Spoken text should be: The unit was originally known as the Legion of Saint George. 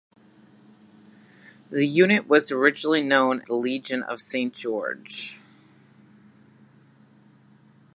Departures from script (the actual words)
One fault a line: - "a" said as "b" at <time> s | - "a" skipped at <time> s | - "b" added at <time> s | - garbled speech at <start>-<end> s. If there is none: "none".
- "as" skipped at 3.4 s